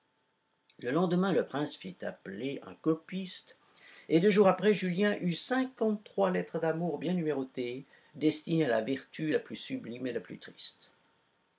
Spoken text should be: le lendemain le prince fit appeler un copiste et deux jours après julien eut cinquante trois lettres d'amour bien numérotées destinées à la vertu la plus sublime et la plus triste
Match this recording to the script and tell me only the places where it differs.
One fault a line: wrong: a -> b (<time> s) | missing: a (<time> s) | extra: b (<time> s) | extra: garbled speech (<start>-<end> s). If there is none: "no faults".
no faults